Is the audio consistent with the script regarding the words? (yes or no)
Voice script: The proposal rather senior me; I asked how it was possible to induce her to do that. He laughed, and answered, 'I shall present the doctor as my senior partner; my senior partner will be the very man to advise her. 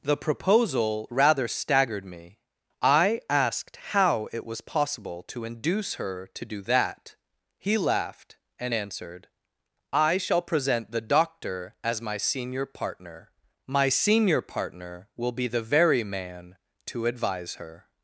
no